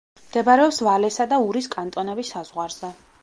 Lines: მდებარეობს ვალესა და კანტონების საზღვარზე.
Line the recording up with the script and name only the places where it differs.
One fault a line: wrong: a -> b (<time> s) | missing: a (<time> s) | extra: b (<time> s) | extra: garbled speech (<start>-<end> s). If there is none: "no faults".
extra: ურის (1.5 s)